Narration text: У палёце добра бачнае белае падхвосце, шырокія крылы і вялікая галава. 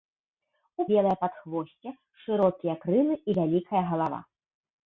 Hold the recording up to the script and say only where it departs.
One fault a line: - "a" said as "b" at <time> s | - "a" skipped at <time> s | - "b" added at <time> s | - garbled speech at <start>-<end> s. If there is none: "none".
- "палёце добра бачнае" skipped at 0.8 s